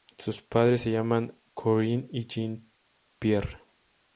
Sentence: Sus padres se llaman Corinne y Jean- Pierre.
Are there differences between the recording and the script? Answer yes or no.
no